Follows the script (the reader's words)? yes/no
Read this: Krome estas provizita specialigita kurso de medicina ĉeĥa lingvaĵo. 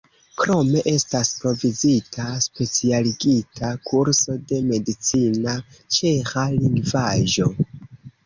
yes